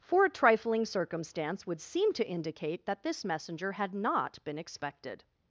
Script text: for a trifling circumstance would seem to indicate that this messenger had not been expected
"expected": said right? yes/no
yes